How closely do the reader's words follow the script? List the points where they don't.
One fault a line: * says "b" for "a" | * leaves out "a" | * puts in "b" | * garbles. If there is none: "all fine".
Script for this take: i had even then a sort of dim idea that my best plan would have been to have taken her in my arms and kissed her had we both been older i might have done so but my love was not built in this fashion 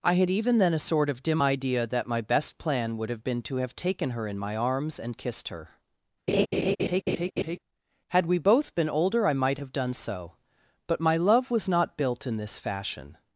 all fine